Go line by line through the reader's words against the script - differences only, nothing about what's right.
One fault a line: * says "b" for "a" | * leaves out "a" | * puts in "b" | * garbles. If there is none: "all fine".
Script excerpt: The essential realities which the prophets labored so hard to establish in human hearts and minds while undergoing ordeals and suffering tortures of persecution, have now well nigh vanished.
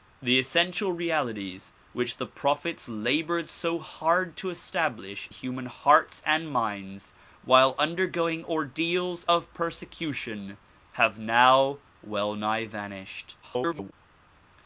* leaves out "in"
* leaves out "and suffering tortures"
* garbles